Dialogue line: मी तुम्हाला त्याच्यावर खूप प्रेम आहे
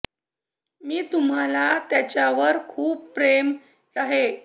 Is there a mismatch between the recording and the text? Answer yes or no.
no